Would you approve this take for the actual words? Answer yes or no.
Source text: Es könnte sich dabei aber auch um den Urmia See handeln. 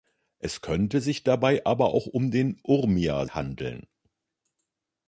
no